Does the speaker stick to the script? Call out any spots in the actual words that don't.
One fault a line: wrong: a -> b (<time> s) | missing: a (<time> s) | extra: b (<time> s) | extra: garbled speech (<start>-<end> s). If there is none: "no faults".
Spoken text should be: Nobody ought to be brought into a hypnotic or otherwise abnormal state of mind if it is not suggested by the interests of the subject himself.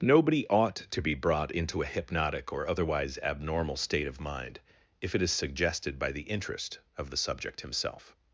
missing: not (5.3 s)
wrong: interests -> interest (6.2 s)